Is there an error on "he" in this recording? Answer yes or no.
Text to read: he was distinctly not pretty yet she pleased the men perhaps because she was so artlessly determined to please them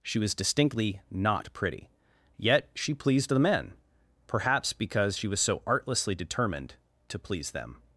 yes